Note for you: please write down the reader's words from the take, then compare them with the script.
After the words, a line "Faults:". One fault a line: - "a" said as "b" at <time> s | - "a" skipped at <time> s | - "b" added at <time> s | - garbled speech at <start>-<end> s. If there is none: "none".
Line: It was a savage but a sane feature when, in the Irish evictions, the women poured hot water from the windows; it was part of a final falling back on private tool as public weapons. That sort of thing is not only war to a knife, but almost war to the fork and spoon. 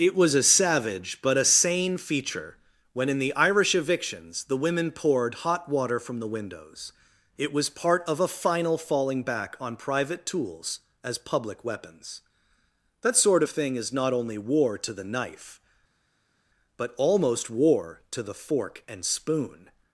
It was a savage but a sane feature when, in the Irish evictions, the women poured hot water from the windows; it was part of a final falling back on private tools as public weapons. That sort of thing is not only war to the knife, but almost war to the fork and spoon.
Faults:
- "tool" said as "tools" at 10.2 s
- "a" said as "the" at 14.9 s